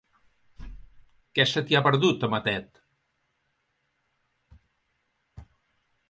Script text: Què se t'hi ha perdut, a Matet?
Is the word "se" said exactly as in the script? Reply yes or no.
yes